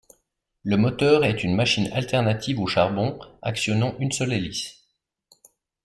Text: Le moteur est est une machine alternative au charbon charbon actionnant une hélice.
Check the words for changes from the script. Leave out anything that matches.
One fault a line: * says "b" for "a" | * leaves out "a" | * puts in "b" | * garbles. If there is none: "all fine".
* leaves out "est"
* leaves out "charbon"
* puts in "seule"